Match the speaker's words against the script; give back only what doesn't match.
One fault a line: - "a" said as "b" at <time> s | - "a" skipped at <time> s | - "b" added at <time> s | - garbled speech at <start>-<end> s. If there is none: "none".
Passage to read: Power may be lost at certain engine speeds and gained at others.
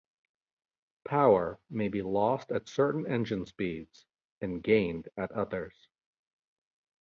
none